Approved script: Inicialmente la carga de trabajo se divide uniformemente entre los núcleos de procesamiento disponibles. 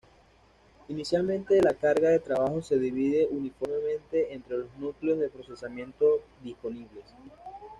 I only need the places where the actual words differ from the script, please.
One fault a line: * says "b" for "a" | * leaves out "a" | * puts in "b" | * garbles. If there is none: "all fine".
all fine